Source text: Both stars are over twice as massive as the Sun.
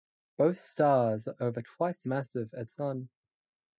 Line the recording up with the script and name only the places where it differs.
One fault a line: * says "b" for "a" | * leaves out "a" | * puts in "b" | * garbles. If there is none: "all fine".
* leaves out "as"
* leaves out "the"